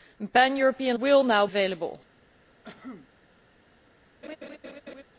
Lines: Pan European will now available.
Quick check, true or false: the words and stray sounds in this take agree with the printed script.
false